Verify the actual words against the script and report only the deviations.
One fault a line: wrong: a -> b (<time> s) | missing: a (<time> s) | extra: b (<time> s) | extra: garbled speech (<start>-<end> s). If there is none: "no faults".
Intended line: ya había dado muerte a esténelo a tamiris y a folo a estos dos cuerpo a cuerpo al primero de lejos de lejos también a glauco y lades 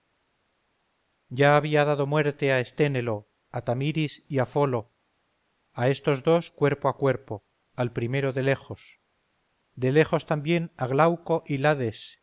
no faults